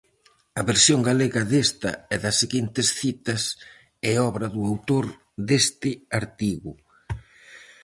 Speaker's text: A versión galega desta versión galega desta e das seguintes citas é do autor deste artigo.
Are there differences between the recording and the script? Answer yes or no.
yes